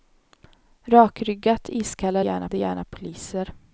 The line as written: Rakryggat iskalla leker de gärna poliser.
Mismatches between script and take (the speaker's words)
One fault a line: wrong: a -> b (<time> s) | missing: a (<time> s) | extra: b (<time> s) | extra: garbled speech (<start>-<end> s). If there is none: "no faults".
wrong: leker -> gärna (2.2 s)